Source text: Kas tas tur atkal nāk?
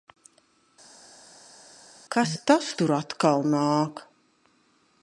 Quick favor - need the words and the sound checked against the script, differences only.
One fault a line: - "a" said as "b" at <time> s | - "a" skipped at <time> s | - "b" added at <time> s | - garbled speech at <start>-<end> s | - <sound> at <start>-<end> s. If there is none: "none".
none